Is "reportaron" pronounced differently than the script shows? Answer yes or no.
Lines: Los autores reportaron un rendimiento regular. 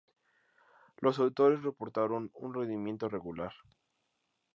no